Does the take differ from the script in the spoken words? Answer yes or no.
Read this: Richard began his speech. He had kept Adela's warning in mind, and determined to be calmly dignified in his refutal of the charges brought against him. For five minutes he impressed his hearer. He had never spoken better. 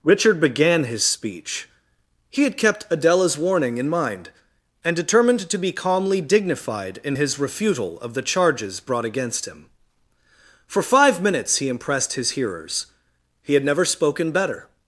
yes